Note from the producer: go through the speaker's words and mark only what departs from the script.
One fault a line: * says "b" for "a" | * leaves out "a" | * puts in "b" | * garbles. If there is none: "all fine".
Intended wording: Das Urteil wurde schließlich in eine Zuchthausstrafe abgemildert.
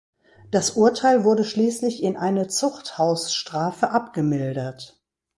all fine